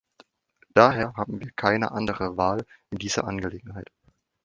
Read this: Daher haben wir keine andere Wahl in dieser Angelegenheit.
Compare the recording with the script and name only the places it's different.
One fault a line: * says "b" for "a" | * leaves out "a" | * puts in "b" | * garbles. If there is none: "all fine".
all fine